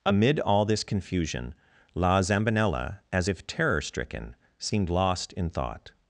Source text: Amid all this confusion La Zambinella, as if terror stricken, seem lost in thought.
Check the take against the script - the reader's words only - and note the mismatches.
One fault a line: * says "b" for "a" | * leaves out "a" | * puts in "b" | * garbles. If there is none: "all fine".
* says "seemed" for "seem"